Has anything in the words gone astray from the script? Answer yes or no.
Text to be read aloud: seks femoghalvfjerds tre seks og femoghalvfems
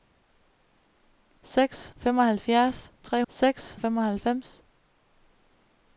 no